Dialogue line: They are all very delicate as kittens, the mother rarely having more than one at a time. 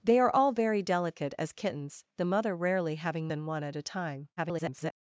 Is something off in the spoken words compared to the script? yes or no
yes